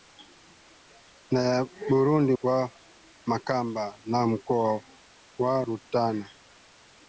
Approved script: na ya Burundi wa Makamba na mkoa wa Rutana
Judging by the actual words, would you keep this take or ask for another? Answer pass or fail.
pass